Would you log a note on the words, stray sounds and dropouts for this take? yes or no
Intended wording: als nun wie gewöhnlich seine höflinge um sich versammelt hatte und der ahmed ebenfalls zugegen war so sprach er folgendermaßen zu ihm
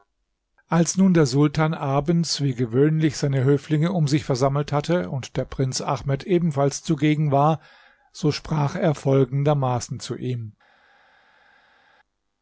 yes